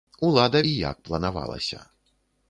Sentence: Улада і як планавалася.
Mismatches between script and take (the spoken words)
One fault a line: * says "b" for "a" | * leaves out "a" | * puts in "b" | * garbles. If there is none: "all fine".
all fine